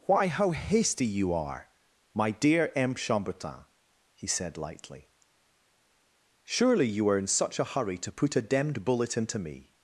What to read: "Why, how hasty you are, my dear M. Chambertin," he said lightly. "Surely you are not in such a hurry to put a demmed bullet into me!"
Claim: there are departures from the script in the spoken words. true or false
true